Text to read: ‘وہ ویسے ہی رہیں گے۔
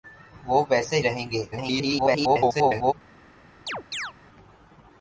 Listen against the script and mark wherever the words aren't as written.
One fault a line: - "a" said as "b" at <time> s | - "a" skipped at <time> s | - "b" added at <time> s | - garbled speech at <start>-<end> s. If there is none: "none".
- "ہی" skipped at 1.0 s
- garbled speech at 1.5-2.9 s